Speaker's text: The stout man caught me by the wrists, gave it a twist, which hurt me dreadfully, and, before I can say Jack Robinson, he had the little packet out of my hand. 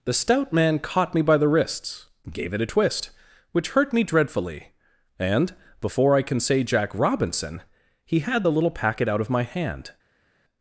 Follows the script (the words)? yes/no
yes